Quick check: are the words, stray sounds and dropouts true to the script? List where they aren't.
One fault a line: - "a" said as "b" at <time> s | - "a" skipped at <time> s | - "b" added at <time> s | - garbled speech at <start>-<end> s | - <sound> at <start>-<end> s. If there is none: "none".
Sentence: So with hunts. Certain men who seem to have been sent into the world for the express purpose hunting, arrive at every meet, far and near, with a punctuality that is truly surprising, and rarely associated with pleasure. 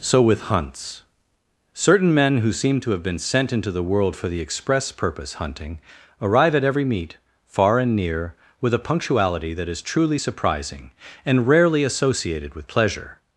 none